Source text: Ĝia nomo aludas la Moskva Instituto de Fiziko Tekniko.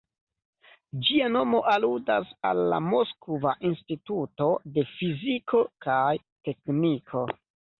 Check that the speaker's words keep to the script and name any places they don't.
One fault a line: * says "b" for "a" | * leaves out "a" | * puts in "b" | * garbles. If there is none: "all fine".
* puts in "al"
* puts in "kaj"